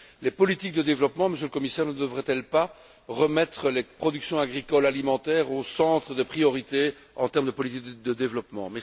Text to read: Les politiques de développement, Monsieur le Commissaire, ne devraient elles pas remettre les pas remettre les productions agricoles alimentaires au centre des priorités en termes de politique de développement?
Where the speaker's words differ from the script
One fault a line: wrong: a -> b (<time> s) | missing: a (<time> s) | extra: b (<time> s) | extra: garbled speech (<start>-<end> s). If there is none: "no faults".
missing: pas remettre les (3.8 s)